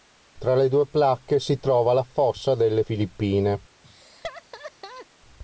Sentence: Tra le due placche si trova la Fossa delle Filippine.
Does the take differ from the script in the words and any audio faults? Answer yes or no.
yes